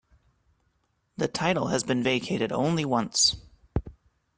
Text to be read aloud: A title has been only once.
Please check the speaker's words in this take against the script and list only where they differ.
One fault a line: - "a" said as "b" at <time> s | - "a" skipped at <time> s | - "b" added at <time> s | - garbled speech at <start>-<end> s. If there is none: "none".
- "A" said as "The" at 1.1 s
- "vacated" added at 2.0 s